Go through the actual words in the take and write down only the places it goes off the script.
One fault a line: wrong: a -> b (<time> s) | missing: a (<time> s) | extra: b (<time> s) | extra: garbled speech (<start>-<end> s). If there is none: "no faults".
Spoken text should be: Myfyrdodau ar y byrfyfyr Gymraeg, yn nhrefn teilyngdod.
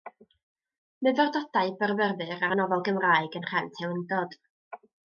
extra: byrfyfyr (1.8 s)
wrong: byrfyfyr -> nofel (2.6 s)